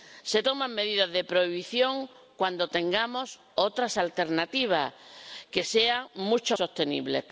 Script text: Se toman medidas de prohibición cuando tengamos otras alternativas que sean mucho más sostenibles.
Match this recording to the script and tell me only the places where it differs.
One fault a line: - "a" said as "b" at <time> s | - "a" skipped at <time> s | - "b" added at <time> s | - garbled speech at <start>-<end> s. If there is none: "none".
- "más" skipped at 6.6 s